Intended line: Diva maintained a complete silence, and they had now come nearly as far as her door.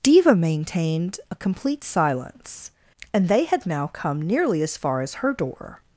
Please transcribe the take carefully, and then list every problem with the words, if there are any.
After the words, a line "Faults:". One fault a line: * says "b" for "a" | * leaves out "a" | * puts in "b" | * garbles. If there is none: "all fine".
Diva maintained a complete silence, and they had now come nearly as far as her door.
Faults:
all fine